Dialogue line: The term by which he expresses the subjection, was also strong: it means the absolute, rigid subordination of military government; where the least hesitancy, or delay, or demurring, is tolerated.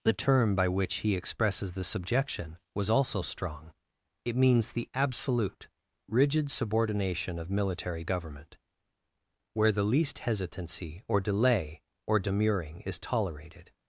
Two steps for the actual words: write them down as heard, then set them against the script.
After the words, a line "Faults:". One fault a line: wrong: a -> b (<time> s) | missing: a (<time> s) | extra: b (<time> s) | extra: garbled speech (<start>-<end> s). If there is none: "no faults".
The term by which he expresses the subjection, was also strong: it means the absolute, rigid subordination of military government; where the least hesitancy, or delay, or demurring, is tolerated.
Faults:
no faults